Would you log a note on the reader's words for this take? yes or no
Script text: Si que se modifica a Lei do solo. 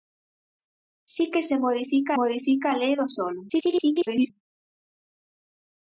yes